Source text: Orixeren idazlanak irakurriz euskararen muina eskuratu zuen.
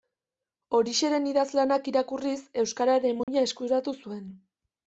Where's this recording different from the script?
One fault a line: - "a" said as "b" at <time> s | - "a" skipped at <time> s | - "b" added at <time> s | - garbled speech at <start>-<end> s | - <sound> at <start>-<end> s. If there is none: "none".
- dropout at 3.2-3.3 s